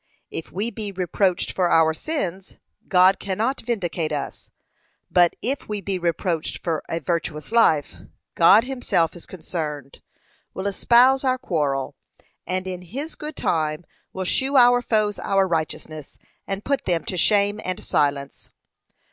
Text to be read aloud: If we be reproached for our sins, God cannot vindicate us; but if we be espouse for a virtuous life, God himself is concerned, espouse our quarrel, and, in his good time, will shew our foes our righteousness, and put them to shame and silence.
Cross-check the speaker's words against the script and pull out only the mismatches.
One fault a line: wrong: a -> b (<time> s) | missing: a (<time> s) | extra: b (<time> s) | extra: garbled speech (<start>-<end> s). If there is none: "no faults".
wrong: espouse -> reproached (6.0 s)
extra: will (10.5 s)